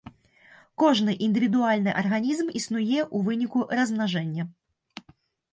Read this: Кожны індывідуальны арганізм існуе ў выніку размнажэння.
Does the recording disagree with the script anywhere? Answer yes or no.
no